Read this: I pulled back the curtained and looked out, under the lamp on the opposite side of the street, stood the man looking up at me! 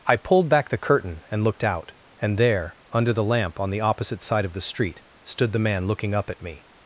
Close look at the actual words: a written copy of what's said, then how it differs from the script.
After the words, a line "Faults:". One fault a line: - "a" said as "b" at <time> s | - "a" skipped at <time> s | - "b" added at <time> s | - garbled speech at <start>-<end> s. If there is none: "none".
I pulled back the curtain and looked out, and there, under the lamp on the opposite side of the street, stood the man looking up at me!
Faults:
- "curtained" said as "curtain" at 0.8 s
- "and there" added at 2.2 s